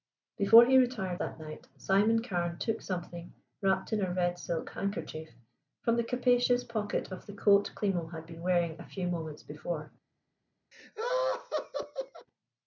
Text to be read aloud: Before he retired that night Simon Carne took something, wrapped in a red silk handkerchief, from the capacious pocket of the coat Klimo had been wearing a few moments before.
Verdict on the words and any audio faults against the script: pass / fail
fail